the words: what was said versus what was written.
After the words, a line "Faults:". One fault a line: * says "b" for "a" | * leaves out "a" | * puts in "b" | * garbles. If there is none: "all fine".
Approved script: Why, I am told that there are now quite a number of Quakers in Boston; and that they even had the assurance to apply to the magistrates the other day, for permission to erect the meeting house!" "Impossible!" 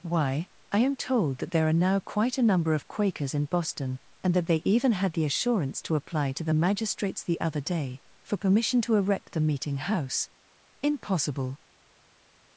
Why, I am told that there are now quite a number of Quakers in Boston; and that they even had the assurance to apply to the magistrates the other day, for permission to erect the meeting house!" "Impossible!"
Faults:
all fine